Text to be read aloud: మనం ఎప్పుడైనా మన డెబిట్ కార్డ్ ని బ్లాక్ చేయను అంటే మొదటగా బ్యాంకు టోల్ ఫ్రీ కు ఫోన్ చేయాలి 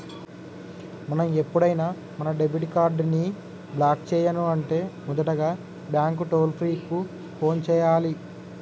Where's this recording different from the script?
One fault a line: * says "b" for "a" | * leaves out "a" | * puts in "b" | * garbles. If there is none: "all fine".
all fine